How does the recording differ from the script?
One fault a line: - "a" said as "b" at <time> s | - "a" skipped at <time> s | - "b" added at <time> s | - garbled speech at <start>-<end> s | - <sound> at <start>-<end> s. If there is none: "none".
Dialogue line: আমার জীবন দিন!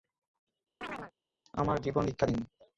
- chirp at 0.8-1.1 s
- "ভিক্ষা" added at 2.0 s